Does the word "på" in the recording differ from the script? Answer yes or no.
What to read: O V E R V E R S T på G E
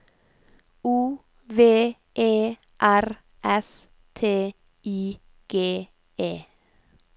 yes